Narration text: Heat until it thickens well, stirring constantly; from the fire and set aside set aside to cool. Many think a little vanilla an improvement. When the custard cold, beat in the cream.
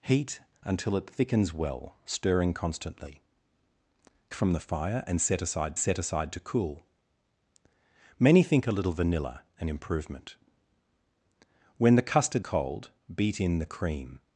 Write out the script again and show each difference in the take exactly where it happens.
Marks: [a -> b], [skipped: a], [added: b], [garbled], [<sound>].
Heat until it thickens well, stirring constantly; from the fire and set aside set aside to cool. Many think a little vanilla an improvement. When the custard cold, beat in the cream.